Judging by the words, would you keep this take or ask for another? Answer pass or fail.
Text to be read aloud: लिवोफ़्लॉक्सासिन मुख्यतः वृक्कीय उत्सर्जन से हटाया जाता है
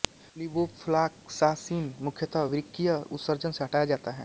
pass